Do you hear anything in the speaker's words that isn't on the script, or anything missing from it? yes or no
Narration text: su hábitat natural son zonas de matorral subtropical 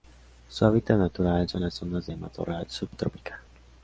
yes